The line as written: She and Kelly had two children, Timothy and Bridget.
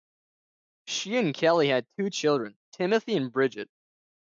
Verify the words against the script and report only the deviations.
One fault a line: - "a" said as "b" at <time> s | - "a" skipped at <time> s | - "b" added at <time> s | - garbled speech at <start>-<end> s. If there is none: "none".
none